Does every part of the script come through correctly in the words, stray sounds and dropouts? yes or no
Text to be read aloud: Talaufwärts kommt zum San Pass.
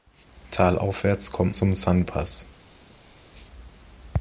yes